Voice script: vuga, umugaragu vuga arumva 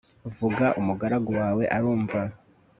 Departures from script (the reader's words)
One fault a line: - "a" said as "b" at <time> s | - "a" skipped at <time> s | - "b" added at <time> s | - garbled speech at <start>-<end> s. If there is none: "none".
- "vuga" said as "wawe" at 1.4 s